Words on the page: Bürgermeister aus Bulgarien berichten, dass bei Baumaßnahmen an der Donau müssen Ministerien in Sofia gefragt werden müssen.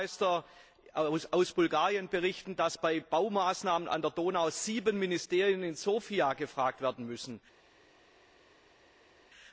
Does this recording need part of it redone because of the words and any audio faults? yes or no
yes